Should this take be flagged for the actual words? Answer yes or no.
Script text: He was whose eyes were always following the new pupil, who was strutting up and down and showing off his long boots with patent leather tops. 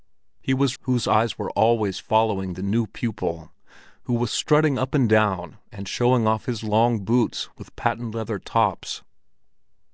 no